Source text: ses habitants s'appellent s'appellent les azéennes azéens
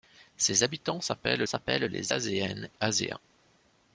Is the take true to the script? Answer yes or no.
yes